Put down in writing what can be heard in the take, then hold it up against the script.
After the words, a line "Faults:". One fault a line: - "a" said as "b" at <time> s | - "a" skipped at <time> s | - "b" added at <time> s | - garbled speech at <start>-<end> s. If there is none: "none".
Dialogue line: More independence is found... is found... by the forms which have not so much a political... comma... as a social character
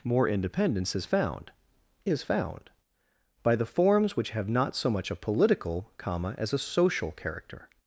More independence is found... is found... by the forms which have not so much a political... comma... as a social character
Faults:
none